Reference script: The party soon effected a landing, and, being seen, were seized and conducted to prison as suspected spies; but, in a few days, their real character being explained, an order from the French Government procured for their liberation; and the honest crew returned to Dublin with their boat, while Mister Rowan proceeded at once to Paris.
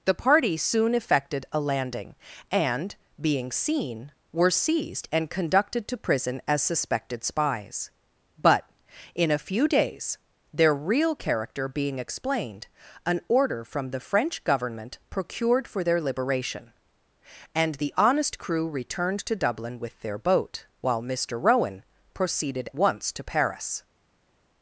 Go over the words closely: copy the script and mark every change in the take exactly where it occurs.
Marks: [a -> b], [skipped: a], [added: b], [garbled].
The party soon effected a landing, and, being seen, were seized and conducted to prison as suspected spies; but, in a few days, their real character being explained, an order from the French Government procured for their liberation; and the honest crew returned to Dublin with their boat, while Mister Rowan proceeded [skipped: at] once to Paris.